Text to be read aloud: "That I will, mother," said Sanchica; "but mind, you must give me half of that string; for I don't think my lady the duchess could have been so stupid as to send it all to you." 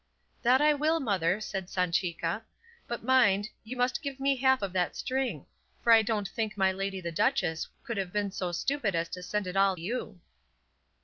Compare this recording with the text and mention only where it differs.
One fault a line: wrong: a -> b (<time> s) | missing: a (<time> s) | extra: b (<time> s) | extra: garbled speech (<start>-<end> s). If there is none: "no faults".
missing: to (9.8 s)